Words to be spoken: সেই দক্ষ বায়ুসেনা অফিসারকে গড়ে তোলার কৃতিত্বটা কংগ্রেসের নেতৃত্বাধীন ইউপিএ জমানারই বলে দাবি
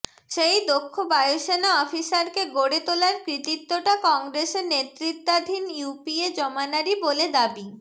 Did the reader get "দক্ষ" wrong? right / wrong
right